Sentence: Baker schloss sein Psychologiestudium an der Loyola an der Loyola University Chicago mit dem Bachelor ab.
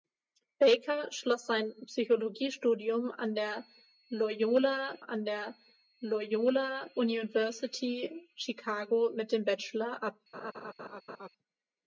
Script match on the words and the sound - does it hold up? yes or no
no